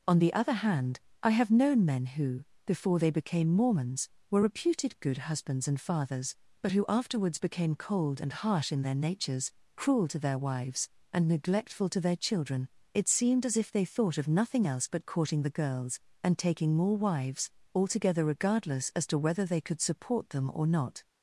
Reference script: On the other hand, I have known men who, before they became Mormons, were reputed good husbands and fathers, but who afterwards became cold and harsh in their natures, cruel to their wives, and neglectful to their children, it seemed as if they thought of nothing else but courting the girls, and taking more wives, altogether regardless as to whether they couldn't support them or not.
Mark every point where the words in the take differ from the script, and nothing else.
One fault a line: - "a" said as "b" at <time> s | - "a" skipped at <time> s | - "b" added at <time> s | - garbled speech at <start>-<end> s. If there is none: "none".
- "couldn't" said as "could" at 19.6 s